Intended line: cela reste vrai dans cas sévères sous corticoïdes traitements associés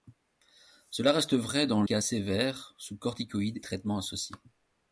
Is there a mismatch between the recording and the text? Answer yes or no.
no